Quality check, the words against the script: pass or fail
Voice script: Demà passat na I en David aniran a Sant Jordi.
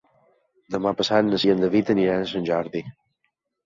pass